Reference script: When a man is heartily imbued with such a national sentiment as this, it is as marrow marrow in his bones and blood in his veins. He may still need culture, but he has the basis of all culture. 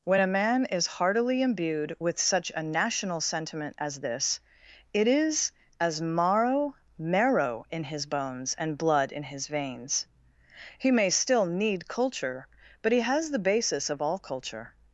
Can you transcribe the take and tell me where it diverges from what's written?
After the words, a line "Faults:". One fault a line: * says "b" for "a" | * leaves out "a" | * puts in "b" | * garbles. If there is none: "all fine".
When a man is heartily imbued with such a national sentiment as this, it is as marrow marrow in his bones and blood in his veins. He may still need culture, but he has the basis of all culture.
Faults:
all fine